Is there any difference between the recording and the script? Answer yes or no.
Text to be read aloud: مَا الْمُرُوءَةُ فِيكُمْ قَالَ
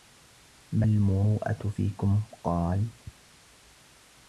no